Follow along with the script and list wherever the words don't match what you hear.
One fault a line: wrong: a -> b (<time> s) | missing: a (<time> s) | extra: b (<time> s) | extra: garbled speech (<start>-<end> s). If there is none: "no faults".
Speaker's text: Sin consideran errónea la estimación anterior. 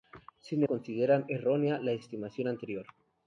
no faults